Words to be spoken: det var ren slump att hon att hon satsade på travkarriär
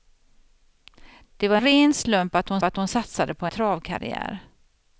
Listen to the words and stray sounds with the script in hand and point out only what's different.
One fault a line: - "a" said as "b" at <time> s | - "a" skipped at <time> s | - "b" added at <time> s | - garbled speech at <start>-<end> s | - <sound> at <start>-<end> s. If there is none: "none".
none